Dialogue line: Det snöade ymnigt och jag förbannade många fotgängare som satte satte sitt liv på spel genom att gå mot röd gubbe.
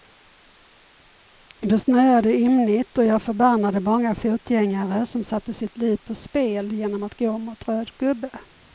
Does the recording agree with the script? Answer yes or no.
no